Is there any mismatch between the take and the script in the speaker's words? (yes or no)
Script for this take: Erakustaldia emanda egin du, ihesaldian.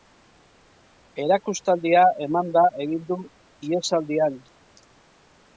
no